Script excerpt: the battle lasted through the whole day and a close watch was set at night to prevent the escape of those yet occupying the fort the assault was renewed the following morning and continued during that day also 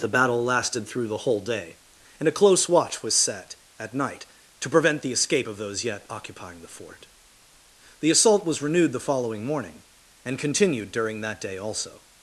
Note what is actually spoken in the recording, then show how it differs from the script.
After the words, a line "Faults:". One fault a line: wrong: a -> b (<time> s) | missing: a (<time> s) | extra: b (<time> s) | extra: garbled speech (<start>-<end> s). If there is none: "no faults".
the battle lasted through the whole day and a close watch was set at night to prevent the escape of those yet occupying the fort the assault was renewed the following morning and continued during that day also
Faults:
no faults